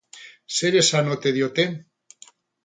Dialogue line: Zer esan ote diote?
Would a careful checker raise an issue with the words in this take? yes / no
no